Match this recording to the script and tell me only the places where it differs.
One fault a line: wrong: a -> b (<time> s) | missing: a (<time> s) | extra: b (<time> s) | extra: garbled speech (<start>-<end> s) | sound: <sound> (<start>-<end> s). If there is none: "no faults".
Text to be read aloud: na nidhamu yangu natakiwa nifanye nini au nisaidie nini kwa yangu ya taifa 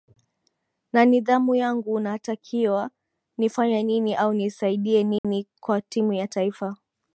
sound: dropout (5.2-5.2 s)
wrong: yangu -> timu (5.8 s)